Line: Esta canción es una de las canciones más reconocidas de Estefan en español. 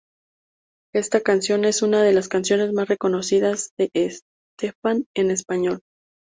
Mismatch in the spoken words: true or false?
false